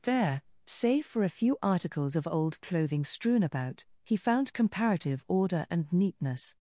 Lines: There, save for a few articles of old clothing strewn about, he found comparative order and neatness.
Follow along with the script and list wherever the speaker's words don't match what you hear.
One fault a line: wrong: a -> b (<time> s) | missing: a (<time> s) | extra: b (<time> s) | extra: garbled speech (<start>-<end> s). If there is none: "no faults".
no faults